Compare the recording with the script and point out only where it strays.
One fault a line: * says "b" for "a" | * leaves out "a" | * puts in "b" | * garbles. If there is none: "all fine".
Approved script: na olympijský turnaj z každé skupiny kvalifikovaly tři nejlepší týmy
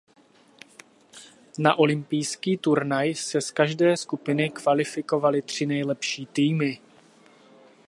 * puts in "se"